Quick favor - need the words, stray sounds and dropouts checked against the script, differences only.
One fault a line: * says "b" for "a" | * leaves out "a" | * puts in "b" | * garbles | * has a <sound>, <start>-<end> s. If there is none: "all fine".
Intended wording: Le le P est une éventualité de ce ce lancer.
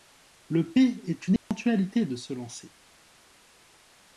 * leaves out "le"
* has a dropout, 1.4-1.5 s
* leaves out "ce"